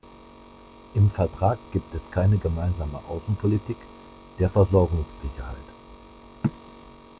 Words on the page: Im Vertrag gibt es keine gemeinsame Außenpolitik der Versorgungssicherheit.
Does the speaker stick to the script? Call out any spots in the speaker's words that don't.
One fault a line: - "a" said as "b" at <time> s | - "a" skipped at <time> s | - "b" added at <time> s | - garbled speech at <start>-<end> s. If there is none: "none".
none